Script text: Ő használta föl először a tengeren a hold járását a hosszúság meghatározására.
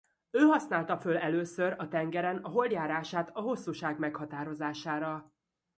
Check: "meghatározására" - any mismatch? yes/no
no